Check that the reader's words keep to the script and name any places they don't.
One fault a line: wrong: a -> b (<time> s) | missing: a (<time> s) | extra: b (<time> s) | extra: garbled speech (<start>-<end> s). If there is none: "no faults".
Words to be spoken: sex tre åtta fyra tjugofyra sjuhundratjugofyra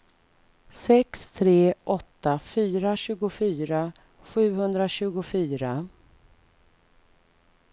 no faults